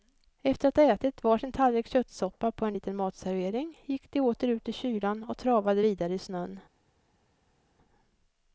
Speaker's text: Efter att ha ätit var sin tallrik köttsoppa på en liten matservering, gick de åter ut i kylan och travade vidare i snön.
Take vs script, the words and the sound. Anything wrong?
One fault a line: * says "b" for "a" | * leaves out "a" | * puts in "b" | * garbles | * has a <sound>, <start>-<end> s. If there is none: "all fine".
all fine